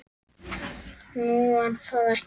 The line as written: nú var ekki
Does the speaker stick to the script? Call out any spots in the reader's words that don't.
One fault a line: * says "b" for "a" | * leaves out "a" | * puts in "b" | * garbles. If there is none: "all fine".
* puts in "það"